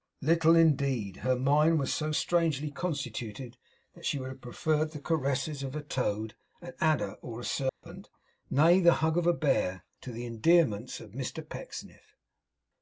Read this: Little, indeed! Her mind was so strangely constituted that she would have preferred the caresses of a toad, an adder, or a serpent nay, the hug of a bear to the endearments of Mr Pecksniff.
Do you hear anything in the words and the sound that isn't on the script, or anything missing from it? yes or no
yes